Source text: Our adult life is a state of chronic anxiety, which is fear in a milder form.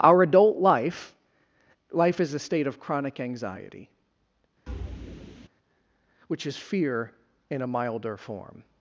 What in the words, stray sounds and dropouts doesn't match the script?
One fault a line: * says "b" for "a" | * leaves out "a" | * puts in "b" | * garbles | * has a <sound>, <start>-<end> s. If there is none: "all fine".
* puts in "life"
* has a thud, 4.7-5.5 s